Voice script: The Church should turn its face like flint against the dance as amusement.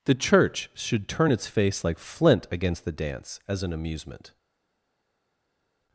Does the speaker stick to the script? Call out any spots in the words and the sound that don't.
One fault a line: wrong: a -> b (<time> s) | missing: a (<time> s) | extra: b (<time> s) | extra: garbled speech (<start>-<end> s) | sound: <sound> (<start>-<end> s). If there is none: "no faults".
extra: an (3.6 s)